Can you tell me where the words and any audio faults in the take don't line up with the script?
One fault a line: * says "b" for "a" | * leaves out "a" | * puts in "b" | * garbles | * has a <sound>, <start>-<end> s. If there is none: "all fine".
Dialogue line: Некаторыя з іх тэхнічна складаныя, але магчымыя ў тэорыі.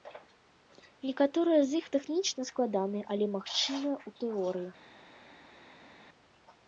all fine